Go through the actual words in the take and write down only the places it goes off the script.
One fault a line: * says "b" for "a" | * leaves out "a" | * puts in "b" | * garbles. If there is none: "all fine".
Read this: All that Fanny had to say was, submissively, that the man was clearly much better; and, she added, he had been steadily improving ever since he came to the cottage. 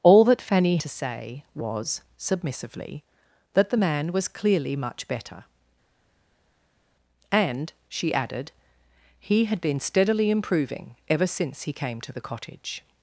* leaves out "had"